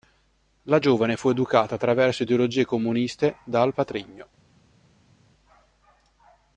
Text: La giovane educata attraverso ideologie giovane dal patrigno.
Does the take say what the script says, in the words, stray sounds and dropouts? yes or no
no